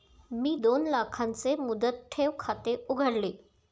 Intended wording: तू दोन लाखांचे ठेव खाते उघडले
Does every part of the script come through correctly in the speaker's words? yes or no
no